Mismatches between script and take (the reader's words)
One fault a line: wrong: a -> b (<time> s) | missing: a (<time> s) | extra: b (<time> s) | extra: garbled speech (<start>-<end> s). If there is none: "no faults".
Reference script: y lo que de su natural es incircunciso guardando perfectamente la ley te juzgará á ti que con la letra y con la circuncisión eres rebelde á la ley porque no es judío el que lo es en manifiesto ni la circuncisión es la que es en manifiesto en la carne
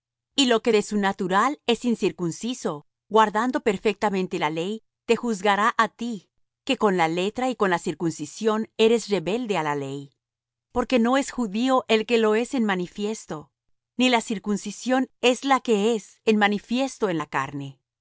no faults